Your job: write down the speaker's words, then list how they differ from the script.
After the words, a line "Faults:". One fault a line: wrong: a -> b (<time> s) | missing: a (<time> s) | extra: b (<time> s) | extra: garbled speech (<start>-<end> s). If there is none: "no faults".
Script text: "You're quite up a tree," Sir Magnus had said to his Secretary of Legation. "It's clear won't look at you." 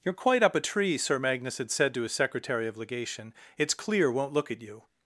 "You're quite up a tree," Sir Magnus had said to his Secretary of Legation. "It's clear won't look at you."
Faults:
no faults